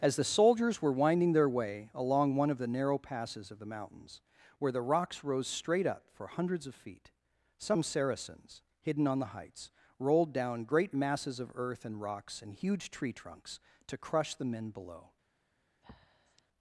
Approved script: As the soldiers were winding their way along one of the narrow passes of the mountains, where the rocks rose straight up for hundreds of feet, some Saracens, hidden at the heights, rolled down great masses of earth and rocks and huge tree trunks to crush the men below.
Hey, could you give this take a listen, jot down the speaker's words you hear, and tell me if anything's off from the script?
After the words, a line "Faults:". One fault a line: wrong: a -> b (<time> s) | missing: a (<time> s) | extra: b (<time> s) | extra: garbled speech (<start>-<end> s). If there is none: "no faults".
As the soldiers were winding their way along one of the narrow passes of the mountains, where the rocks rose straight up for hundreds of feet, some Saracens, hidden on the heights, rolled down great masses of earth and rocks and huge tree trunks to crush the men below.
Faults:
wrong: at -> on (9.1 s)